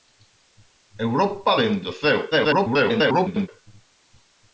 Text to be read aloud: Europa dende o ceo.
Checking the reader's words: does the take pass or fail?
fail